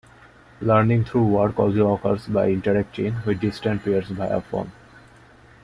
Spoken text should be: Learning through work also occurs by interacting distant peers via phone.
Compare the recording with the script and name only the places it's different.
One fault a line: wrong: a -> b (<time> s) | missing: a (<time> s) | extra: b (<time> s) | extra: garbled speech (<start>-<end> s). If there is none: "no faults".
extra: with (3.2 s)